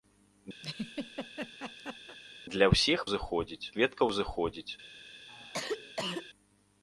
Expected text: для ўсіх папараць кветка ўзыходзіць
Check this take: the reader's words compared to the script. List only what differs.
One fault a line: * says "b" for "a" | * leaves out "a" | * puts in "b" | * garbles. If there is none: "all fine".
* says "ўзыходзіць" for "папараць"